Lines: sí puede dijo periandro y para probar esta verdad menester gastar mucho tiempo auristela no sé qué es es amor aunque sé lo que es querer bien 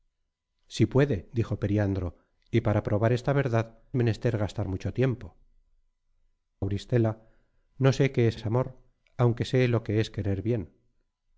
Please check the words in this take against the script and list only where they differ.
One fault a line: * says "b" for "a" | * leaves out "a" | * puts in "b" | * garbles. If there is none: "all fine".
all fine